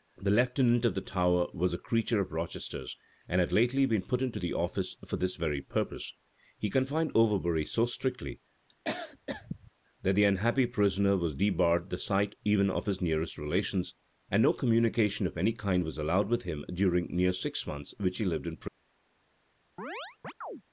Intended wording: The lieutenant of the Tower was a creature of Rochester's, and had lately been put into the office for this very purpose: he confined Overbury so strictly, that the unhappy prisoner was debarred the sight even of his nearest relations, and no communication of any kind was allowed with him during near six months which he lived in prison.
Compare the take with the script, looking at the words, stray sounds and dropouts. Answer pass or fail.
fail